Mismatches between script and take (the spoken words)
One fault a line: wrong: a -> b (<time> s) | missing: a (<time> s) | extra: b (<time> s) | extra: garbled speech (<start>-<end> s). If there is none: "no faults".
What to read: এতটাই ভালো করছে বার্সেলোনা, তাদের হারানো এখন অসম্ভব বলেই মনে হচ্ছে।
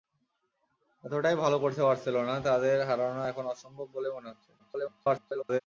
extra: garbled speech (4.6-5.6 s)